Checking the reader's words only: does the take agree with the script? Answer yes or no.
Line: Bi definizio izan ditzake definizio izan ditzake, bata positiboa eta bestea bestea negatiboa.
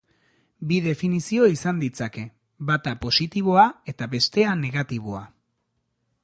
no